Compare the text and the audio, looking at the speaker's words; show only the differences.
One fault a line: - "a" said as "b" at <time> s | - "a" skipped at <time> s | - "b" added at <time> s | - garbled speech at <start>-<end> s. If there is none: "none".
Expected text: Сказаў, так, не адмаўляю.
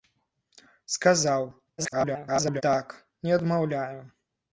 - garbled speech at 1.8-2.6 s